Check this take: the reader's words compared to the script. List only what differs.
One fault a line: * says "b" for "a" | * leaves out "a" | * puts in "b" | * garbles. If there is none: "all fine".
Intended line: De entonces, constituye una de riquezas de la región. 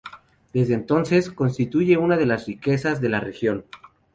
* says "Desde" for "De"
* puts in "las"